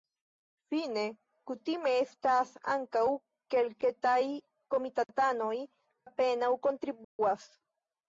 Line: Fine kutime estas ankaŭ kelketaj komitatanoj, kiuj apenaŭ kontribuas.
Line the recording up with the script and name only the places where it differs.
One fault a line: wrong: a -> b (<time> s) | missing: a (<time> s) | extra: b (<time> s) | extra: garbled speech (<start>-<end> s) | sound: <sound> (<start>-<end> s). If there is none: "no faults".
missing: kiuj (5.5 s)
sound: dropout (7.0-7.2 s)